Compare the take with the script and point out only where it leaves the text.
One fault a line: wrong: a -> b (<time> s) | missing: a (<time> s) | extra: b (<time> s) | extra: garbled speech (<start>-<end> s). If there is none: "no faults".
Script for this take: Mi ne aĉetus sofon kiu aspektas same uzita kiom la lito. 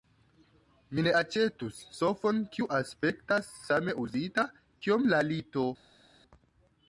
no faults